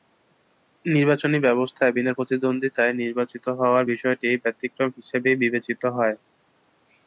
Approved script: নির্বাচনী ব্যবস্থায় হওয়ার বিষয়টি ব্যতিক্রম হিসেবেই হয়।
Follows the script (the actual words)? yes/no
no